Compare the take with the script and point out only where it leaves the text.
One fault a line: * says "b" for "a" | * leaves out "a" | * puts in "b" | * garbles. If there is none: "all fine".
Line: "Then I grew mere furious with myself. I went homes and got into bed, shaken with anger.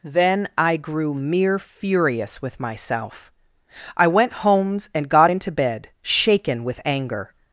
all fine